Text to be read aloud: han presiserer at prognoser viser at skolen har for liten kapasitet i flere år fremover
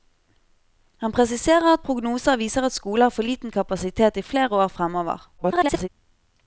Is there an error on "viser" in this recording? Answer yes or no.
no